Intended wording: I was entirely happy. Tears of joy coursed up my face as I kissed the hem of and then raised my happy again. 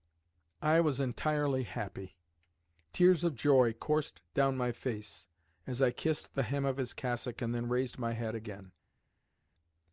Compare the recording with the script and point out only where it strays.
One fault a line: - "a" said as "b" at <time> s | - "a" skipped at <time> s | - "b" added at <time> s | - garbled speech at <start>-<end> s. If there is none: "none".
- "up" said as "down" at 4.3 s
- "his cassock" added at 6.8 s
- "happy" said as "head" at 8.1 s